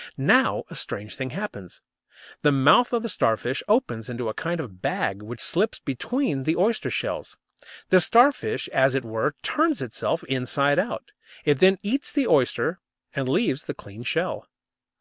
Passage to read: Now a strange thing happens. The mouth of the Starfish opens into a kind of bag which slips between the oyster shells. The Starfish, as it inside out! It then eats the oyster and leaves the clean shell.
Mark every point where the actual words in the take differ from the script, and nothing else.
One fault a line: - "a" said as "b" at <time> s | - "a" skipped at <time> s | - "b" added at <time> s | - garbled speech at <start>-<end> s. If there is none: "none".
- "were turns itself" added at 9.0 s